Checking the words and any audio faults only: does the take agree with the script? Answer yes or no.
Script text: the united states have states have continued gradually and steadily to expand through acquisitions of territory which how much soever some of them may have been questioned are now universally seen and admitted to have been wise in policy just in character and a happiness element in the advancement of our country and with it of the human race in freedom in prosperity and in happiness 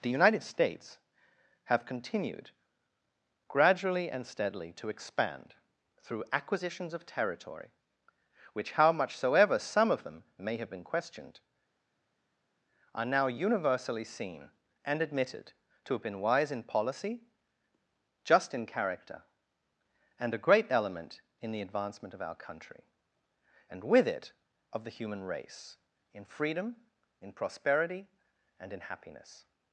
no